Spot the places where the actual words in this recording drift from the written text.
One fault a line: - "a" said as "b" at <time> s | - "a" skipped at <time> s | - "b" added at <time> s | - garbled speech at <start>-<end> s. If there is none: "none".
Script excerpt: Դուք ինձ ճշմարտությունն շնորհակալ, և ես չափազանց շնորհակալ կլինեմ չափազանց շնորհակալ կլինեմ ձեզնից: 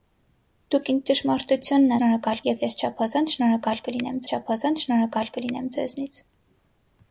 none